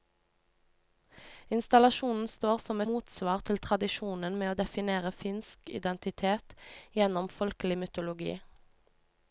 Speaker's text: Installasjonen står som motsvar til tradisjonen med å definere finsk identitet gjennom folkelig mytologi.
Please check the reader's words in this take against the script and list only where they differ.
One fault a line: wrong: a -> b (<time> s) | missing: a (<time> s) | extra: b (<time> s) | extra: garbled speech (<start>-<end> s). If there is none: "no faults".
no faults